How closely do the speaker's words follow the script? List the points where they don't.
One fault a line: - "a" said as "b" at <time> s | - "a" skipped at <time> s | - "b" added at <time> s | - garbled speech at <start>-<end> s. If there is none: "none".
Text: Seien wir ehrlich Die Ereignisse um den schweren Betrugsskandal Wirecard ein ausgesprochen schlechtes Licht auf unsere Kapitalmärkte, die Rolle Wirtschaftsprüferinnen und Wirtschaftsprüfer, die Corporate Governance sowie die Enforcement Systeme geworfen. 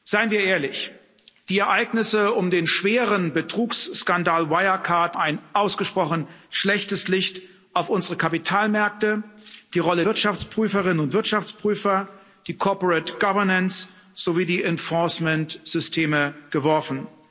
none